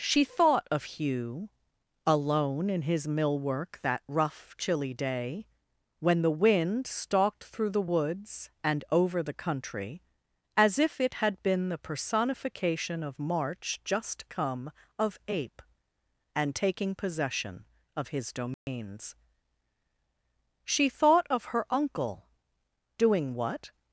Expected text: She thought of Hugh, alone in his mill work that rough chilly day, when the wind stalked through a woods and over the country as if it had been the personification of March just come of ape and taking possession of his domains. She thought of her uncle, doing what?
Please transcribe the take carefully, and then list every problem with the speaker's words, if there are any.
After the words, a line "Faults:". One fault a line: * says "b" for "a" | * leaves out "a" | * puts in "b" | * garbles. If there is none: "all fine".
She thought of Hugh, alone in his mill work that rough chilly day, when the wind stalked through the woods and over the country as if it had been the personification of March just come of ape and taking possession of his domains. She thought of her uncle, doing what?
Faults:
* says "the" for "a"